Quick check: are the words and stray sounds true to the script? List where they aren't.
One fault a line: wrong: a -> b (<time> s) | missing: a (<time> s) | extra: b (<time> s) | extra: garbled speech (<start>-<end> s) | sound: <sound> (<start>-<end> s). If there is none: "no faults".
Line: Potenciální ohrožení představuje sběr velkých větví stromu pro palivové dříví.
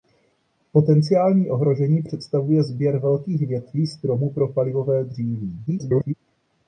extra: garbled speech (5.7-6.1 s)